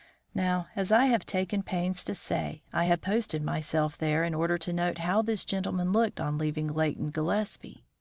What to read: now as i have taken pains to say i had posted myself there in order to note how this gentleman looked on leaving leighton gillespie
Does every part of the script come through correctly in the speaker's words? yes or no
yes